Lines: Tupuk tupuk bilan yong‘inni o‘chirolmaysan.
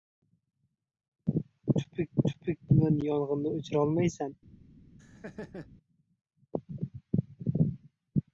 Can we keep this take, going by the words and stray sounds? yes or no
no